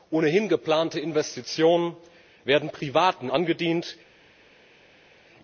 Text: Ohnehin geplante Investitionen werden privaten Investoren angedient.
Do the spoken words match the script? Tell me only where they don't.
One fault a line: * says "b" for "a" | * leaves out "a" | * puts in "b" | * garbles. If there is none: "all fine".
* leaves out "Investoren"